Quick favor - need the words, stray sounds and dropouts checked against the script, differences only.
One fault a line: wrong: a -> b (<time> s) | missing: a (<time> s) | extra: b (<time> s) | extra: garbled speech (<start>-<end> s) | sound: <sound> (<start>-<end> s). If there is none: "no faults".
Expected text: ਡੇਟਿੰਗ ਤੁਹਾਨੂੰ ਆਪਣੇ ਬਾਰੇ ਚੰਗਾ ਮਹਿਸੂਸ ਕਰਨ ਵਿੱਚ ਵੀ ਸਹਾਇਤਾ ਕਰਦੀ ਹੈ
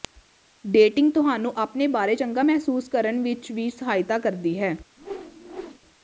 sound: whoosh (5.0-5.8 s)